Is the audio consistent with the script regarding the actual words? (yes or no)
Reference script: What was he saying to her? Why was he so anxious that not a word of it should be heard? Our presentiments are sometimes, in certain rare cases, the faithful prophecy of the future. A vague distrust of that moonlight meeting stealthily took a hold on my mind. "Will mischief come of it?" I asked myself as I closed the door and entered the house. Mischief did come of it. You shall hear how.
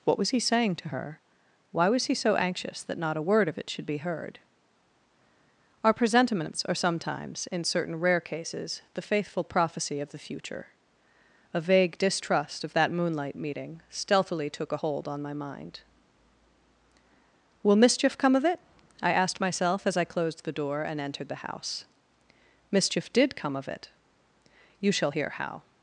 yes